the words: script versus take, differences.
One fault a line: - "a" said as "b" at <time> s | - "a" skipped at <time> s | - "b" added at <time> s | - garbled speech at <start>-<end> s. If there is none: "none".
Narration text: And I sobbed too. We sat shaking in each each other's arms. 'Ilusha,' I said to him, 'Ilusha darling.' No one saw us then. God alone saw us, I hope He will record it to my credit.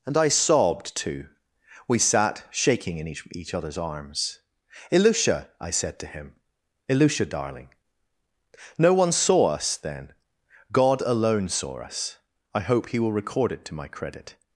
none